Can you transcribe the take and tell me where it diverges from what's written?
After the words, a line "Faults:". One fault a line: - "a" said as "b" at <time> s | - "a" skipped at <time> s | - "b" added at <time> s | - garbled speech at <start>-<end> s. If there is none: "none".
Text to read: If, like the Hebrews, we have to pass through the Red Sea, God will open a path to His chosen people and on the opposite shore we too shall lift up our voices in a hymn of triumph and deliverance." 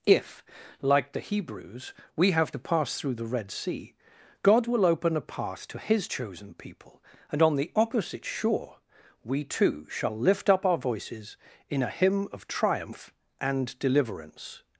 If, like the Hebrews, we have to pass through the Red Sea, God will open a path to His chosen people and on the opposite shore we too shall lift up our voices in a hymn of triumph and deliverance."
Faults:
none